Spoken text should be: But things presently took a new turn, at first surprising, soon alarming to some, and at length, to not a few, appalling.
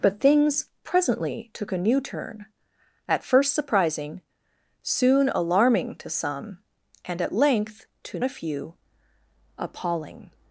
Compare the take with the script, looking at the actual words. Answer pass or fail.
fail